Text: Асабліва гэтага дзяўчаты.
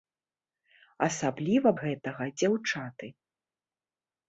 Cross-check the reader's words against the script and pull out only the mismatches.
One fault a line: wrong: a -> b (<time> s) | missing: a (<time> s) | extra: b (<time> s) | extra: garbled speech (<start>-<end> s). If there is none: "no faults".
no faults